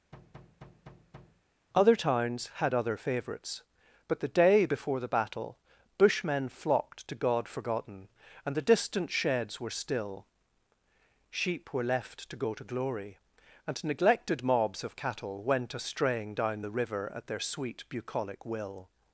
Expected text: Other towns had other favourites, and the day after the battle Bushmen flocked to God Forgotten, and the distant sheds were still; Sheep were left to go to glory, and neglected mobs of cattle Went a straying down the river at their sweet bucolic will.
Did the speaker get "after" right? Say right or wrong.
wrong